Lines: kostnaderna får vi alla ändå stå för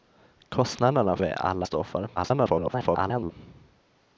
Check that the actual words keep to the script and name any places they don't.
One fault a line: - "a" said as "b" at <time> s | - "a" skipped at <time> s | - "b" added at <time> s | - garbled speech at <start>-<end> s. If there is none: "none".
- "får" skipped at 1.2 s
- "ändå" skipped at 1.7 s
- garbled speech at 2.2-3.3 s